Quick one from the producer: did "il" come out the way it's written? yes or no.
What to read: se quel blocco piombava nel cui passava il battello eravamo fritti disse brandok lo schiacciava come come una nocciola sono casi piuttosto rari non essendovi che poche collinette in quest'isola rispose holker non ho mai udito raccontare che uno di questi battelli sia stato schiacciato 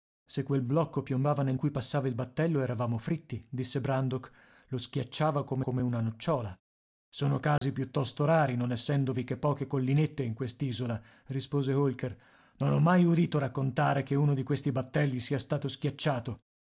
yes